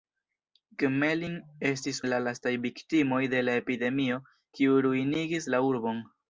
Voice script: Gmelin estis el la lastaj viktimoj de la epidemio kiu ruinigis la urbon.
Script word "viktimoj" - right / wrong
right